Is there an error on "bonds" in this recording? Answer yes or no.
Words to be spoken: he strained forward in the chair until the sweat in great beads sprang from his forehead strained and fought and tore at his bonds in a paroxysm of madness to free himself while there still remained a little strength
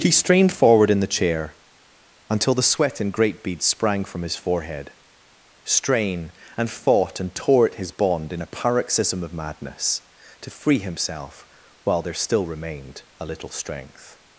yes